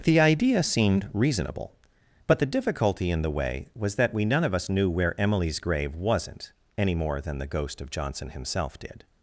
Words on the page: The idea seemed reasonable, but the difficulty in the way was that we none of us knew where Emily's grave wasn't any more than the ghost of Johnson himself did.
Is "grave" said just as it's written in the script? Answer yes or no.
yes